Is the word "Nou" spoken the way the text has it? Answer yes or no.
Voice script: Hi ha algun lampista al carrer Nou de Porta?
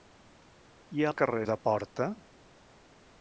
no